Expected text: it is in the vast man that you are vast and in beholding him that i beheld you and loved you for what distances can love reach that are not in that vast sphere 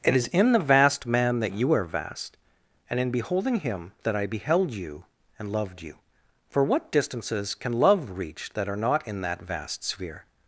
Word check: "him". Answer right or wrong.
right